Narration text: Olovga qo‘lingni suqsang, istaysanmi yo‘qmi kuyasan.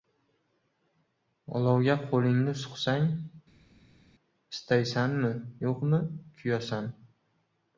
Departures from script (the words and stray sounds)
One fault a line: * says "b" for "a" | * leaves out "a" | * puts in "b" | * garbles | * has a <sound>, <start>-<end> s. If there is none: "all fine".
all fine